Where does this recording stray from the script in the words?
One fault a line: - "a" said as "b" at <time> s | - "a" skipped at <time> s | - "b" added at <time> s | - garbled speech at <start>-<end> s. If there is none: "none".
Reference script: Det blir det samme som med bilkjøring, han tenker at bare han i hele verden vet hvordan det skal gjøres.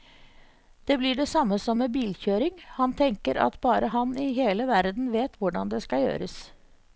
none